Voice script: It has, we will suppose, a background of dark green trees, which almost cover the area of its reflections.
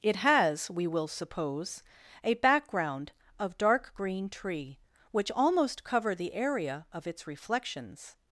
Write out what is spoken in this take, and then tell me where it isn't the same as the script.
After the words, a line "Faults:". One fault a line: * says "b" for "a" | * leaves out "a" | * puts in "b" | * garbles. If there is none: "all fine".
It has, we will suppose, a background of dark green tree, which almost cover the area of its reflections.
Faults:
* says "tree" for "trees"